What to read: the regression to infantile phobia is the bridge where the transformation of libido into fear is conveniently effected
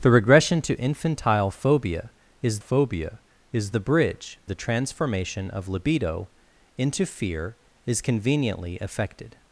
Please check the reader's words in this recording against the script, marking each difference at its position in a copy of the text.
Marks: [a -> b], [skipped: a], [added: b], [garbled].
the regression to infantile phobia is [added: phobia is] the bridge [skipped: where] the transformation of libido into fear is conveniently effected